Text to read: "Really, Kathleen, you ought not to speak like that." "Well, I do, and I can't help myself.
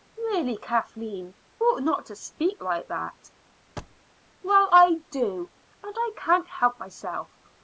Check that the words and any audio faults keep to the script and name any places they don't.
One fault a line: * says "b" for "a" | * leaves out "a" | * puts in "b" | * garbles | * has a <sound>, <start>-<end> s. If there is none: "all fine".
* leaves out "you"
* has a thud, 3.8-4.0 s